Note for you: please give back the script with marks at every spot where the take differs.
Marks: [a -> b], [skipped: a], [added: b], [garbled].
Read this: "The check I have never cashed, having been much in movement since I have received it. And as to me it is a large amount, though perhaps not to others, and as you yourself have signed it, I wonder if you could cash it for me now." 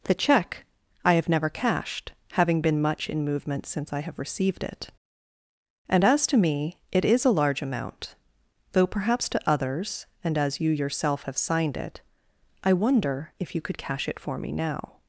"The check I have never cashed, having been much in movement since I have received it. And as to me it is a large amount, though perhaps [skipped: not] to others, and as you yourself have signed it, I wonder if you could cash it for me now."